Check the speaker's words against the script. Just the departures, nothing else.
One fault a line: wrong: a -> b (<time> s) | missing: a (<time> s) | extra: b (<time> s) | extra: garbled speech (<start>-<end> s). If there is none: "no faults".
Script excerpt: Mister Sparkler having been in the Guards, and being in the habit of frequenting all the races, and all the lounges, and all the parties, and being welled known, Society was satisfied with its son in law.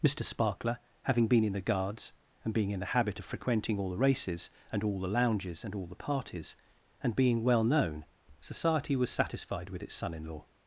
wrong: welled -> well (7.4 s)